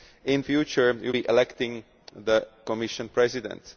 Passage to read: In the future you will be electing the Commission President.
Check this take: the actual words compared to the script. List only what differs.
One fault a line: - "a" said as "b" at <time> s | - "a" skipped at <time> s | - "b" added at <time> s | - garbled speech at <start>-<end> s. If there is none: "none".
- "the" skipped at 0.4 s
- "will" skipped at 1.1 s